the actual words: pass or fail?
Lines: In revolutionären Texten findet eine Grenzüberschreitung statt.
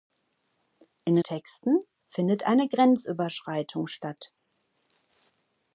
fail